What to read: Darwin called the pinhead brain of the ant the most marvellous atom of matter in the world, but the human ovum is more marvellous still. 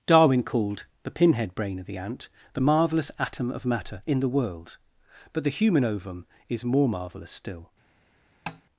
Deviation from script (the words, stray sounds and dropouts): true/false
true